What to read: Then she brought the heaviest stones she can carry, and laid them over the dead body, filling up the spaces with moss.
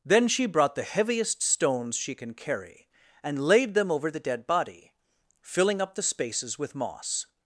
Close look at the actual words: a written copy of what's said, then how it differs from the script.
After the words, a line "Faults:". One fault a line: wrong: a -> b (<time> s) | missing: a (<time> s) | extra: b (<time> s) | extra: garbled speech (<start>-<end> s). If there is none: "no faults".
Then she brought the heaviest stones she can carry, and laid them over the dead body, filling up the spaces with moss.
Faults:
no faults